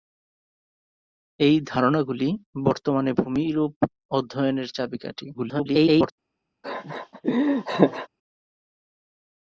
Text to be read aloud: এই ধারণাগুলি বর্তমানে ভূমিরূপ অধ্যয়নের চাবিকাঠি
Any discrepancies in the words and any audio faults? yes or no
yes